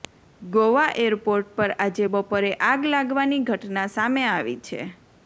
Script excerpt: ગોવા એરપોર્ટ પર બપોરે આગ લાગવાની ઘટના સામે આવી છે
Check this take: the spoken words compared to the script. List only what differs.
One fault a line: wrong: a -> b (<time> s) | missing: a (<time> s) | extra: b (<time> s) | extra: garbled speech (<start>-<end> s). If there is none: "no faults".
extra: આજે (1.8 s)